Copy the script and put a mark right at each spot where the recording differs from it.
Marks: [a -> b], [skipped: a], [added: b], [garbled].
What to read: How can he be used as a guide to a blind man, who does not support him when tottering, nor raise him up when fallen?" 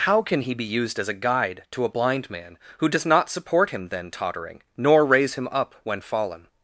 How can he be used as a guide to a blind man, who does not support him [when -> then] tottering, nor raise him up when fallen?"